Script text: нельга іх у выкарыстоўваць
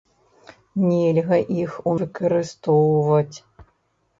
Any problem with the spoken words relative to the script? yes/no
no